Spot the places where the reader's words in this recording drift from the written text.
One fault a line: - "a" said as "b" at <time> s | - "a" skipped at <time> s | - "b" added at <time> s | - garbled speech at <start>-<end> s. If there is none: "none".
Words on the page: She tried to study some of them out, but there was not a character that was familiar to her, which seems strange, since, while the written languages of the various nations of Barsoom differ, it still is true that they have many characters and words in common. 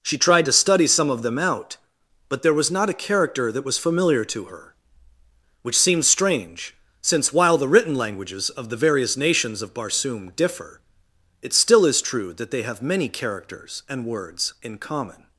none